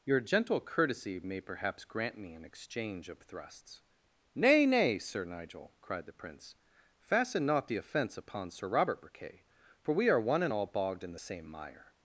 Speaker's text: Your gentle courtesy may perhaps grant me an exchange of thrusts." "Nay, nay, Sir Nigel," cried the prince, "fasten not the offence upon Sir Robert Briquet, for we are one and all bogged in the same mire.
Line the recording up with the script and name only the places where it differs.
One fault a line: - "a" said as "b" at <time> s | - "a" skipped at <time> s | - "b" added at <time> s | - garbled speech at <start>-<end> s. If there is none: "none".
none